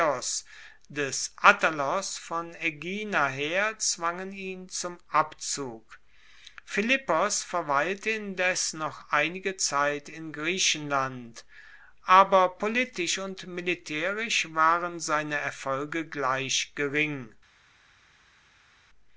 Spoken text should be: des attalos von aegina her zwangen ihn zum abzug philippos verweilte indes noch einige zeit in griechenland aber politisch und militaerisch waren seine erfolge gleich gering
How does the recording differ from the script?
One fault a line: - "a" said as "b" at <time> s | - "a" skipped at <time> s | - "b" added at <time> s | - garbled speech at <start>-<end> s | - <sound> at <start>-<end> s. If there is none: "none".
none